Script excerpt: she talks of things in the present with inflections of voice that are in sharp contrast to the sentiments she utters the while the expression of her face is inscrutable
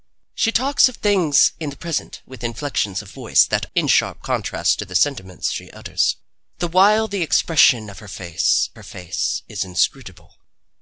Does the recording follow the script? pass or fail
fail